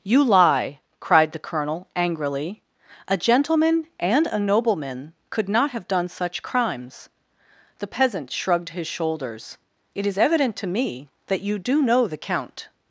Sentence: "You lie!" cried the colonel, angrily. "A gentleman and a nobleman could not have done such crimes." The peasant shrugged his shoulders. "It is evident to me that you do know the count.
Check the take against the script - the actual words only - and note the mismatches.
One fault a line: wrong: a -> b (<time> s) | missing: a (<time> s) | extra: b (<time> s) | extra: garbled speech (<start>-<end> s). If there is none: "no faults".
no faults